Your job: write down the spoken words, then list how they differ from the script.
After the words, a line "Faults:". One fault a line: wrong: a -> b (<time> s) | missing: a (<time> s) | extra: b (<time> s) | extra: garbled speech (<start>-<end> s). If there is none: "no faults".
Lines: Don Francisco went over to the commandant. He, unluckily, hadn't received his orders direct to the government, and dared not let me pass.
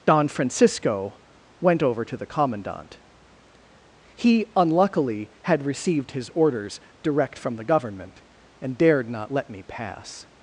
Don Francisco went over to the commandant. He, unluckily, had received his orders direct from the government, and dared not let me pass.
Faults:
wrong: hadn't -> had (5.4 s)
wrong: to -> from (7.4 s)